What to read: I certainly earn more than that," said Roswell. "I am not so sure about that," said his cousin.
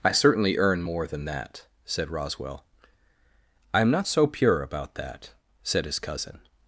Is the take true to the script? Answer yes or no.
no